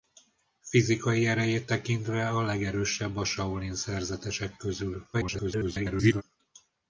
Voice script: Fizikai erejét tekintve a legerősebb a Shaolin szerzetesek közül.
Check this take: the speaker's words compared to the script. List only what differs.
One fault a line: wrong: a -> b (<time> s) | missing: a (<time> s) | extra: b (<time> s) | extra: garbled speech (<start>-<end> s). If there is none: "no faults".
extra: garbled speech (5.1-6.2 s)